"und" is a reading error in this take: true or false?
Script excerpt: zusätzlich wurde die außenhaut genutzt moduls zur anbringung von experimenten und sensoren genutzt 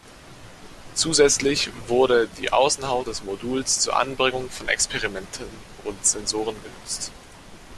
false